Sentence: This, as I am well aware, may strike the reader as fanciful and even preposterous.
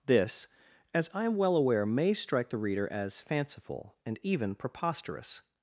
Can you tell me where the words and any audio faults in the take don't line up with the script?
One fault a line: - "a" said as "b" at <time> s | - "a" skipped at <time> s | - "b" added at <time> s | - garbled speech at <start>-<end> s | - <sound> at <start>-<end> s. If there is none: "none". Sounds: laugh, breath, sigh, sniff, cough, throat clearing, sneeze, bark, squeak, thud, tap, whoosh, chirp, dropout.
none